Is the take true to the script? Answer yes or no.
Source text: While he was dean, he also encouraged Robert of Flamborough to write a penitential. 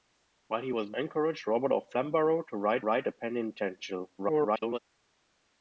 no